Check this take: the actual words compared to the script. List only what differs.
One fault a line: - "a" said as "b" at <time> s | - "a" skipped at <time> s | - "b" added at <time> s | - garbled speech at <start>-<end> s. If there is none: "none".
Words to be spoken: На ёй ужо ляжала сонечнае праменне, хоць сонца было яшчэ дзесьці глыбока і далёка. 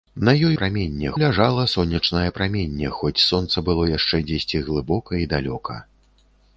- "ужо" said as "праменне" at 0.6 s